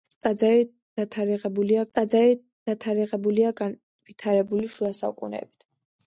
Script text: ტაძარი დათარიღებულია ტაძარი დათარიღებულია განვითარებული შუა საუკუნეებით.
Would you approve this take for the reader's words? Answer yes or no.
yes